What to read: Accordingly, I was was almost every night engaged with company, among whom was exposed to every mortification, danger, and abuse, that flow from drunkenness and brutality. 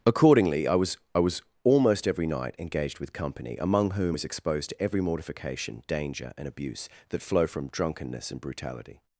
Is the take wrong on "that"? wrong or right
right